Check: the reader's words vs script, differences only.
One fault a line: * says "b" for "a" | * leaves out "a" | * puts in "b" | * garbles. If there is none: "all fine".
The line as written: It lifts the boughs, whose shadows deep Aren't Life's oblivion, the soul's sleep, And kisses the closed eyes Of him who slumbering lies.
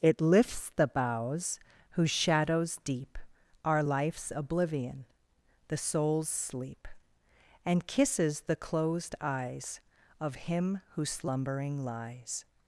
* says "Are" for "Aren't"